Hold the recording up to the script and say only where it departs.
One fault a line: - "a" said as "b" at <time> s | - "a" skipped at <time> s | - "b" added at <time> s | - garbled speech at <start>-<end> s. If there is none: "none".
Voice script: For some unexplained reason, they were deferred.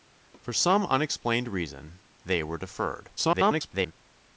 - garbled speech at 3.2-3.9 s